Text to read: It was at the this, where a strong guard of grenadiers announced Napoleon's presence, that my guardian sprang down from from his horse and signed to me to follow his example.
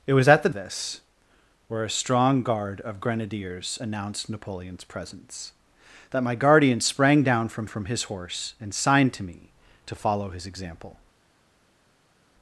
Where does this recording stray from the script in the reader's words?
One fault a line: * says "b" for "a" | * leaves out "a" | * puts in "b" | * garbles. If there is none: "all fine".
all fine